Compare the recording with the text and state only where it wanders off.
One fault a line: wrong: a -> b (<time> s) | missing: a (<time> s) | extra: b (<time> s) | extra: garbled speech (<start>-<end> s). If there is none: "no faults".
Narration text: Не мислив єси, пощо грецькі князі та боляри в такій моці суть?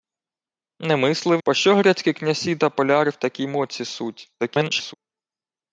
missing: єси (1.4 s)
extra: garbled speech (4.4-4.9 s)